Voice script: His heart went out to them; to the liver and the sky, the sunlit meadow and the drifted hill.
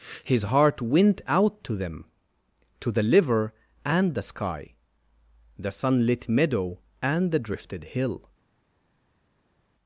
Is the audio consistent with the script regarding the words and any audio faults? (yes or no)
yes